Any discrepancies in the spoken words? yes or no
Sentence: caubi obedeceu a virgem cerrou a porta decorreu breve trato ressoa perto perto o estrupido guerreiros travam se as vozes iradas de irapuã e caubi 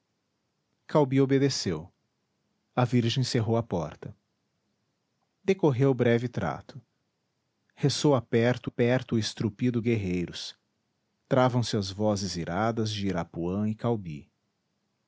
no